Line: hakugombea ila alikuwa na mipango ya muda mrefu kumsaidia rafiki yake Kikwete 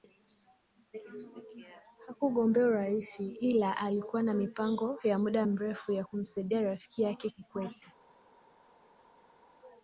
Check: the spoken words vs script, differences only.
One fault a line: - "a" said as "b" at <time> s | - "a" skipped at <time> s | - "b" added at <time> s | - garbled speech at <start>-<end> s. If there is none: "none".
- "urais" added at 2.7 s
- "ya" added at 5.9 s